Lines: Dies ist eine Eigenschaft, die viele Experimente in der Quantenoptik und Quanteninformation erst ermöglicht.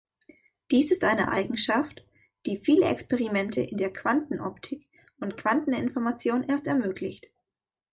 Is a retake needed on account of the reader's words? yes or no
no